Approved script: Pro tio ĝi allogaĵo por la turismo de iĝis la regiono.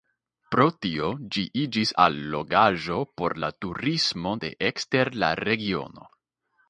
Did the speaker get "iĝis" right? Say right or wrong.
wrong